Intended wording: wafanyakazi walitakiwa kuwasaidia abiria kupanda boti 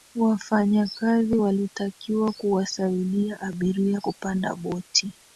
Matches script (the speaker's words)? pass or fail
pass